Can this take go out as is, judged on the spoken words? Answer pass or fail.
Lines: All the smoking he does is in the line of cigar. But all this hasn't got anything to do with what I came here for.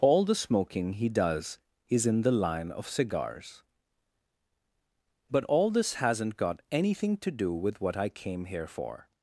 fail